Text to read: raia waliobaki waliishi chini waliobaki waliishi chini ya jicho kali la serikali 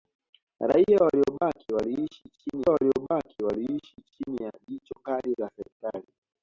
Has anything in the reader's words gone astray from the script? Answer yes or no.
no